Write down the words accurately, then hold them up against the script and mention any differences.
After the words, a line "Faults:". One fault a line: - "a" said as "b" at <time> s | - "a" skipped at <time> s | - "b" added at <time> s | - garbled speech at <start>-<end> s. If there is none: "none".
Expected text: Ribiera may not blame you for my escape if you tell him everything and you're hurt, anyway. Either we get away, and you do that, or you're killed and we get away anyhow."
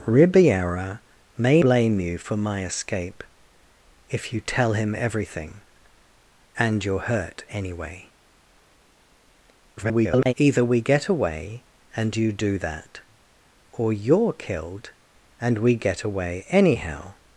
Ribiera may blame you for my escape if you tell him everything and you're hurt, anyway. [garbled] Either we get away, and you do that, or you're killed and we get away anyhow."
Faults:
- "not" skipped at 1.6 s
- garbled speech at 9.8-10.3 s